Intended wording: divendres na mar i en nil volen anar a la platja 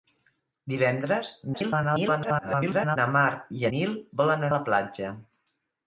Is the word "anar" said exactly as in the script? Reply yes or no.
no